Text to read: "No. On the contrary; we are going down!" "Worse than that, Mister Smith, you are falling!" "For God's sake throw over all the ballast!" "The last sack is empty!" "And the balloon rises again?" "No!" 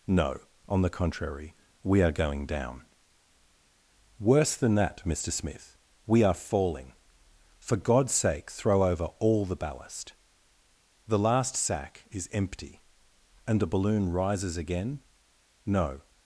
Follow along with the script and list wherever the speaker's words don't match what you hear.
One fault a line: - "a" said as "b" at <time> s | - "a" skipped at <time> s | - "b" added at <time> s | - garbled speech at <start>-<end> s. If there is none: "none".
- "you" said as "we" at 6.1 s